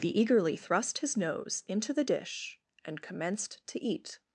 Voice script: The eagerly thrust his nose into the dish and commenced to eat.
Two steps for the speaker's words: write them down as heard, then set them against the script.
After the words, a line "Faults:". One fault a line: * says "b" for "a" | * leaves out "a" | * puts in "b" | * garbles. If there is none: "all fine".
The eagerly thrust his nose into the dish and commenced to eat.
Faults:
all fine